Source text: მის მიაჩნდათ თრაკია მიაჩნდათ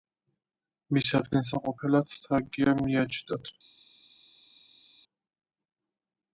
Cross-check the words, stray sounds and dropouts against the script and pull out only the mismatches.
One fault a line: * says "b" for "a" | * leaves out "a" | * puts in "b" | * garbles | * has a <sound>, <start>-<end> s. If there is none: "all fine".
* says "ადგილსამყოფელად" for "მიაჩნდათ"